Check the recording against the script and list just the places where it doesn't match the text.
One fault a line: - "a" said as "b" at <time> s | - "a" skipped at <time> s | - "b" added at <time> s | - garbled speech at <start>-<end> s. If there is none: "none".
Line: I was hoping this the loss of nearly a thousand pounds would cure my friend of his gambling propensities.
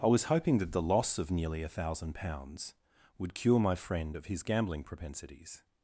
- "this" said as "that" at 0.6 s